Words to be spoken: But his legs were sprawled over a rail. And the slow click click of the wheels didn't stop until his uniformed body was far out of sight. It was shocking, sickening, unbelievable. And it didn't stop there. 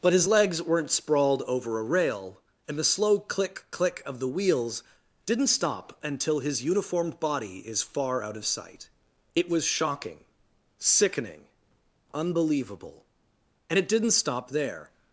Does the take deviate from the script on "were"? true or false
true